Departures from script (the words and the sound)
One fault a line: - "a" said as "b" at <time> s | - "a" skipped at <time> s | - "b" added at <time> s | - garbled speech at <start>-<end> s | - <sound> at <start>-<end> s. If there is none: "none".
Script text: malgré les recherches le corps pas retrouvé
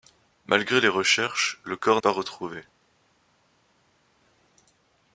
none